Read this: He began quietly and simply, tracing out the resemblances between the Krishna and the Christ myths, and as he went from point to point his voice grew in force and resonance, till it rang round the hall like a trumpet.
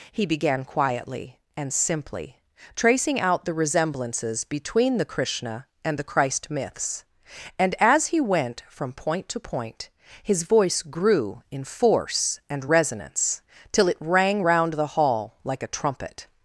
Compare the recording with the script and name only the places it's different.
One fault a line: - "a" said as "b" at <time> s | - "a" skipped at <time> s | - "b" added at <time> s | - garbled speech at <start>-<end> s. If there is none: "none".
none